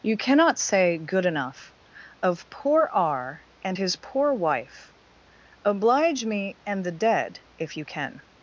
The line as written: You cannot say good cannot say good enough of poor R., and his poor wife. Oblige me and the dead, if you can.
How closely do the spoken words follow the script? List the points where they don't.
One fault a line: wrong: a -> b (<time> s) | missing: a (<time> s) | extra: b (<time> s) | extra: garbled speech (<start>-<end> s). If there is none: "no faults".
missing: cannot say good (1.2 s)